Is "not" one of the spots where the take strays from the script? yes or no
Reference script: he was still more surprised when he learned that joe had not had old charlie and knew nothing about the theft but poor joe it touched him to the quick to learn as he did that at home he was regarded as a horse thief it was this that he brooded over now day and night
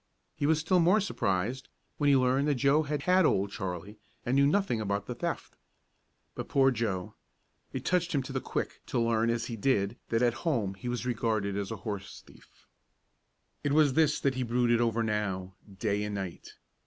yes